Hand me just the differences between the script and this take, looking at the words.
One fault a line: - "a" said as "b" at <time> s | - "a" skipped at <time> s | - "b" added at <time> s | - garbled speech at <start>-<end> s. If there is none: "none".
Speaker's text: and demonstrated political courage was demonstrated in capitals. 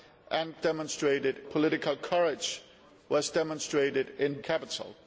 none